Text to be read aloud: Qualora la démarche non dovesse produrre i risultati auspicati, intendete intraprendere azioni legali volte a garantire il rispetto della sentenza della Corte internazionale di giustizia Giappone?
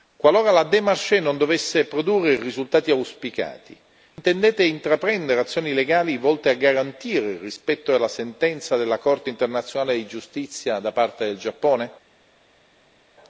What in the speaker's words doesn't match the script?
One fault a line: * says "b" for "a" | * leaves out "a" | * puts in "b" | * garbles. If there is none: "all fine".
* puts in "da parte del"